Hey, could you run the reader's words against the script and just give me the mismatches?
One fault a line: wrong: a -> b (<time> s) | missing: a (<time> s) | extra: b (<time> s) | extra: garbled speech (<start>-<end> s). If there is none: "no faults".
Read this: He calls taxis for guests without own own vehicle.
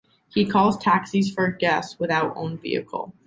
missing: own (2.6 s)